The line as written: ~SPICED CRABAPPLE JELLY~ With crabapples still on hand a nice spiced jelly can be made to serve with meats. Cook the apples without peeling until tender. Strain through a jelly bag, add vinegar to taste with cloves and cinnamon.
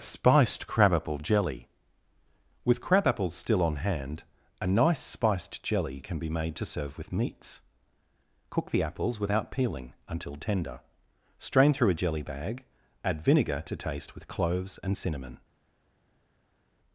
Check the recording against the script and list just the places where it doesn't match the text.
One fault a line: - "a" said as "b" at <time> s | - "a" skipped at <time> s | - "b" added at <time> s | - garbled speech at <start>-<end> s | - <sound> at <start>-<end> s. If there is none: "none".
none